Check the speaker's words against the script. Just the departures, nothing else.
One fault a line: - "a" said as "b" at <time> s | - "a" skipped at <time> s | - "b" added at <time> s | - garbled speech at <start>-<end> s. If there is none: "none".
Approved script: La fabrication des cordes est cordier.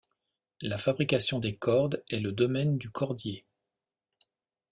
- "le domaine du" added at 2.2 s